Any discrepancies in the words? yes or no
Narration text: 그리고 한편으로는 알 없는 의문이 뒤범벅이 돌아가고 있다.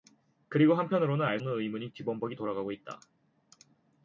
no